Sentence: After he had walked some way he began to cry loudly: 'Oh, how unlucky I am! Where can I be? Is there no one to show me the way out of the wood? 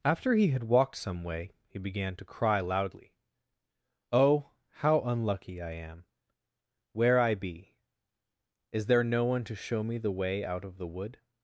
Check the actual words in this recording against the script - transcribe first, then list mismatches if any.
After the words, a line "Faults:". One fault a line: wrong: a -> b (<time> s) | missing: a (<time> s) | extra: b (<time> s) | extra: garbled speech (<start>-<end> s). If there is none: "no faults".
After he had walked some way he began to cry loudly: 'Oh, how unlucky I am! Where I be? Is there no one to show me the way out of the wood?
Faults:
missing: can (7.2 s)